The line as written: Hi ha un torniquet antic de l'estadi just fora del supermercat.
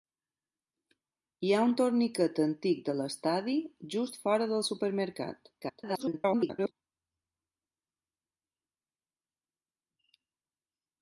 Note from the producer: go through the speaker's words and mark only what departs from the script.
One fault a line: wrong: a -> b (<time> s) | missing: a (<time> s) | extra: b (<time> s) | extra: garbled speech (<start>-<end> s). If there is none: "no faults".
extra: garbled speech (5.6-6.7 s)